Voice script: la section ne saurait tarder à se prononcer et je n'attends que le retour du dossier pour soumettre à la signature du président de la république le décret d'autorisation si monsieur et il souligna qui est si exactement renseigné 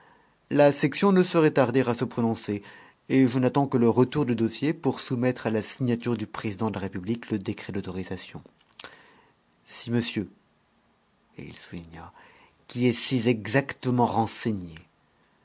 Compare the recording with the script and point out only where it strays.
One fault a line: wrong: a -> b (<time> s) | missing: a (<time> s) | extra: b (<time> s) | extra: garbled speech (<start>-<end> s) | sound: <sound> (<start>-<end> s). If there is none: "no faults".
no faults